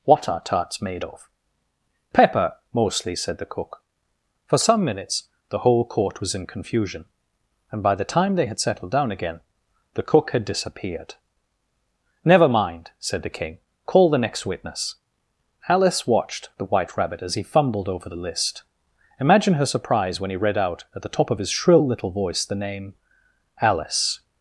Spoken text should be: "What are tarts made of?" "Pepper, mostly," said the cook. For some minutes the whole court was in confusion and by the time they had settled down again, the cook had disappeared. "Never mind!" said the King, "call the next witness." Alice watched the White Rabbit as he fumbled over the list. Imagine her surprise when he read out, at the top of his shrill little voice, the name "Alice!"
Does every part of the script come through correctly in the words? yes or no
yes